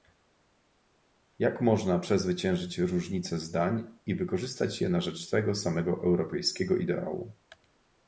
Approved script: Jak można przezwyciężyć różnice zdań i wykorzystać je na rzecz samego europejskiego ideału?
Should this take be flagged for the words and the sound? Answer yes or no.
yes